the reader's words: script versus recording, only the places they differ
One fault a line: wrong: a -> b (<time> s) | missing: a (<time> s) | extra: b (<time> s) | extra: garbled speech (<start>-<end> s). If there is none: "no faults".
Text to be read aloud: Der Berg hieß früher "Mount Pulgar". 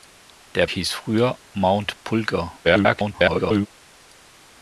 missing: Berg (0.7 s)
extra: garbled speech (2.6-3.7 s)